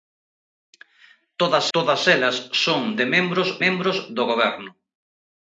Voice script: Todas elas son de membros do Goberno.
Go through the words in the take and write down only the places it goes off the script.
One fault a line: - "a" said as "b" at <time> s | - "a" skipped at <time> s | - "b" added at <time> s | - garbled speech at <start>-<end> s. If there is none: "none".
- "todas" added at 1.7 s
- "membros" added at 3.6 s